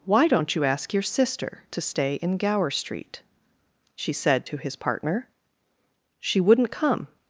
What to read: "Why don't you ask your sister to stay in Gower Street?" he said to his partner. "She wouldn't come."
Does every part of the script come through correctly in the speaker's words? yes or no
no